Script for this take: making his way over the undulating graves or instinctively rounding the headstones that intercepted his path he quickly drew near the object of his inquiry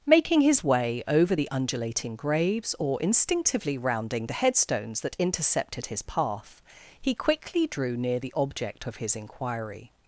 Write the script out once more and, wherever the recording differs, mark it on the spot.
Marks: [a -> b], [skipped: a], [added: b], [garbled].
making his way over the undulating graves or instinctively rounding the headstones that intercepted his path he quickly drew near the object of his inquiry